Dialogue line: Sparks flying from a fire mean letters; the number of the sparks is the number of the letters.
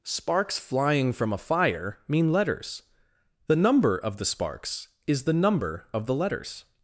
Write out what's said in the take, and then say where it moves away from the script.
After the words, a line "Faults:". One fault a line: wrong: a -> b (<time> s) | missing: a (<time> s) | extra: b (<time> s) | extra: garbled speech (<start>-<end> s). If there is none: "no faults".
Sparks flying from a fire mean letters; the number of the sparks is the number of the letters.
Faults:
no faults